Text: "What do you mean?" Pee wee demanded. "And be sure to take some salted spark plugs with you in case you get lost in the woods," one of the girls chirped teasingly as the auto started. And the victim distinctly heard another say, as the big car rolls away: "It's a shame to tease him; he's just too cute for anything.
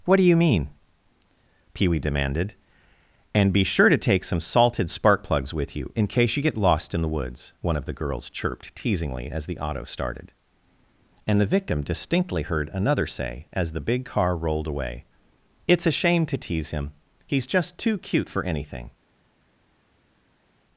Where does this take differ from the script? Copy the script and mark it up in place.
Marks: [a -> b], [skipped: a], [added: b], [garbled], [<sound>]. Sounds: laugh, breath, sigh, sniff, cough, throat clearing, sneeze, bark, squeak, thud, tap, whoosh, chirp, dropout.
"What do you mean?" Pee wee demanded. "And be sure to take some salted spark plugs with you in case you get lost in the woods," one of the girls chirped teasingly as the auto started. And the victim distinctly heard another say, as the big car [rolls -> rolled] away: "It's a shame to tease him; he's just too cute for anything.